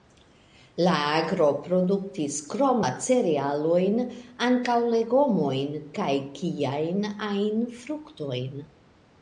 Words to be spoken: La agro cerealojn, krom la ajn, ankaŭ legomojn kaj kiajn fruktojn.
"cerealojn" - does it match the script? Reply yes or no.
no